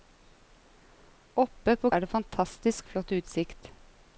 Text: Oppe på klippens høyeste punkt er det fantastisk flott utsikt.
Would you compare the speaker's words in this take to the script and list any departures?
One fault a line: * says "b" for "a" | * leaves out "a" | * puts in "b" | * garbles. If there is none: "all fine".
* leaves out "klippens høyeste punkt"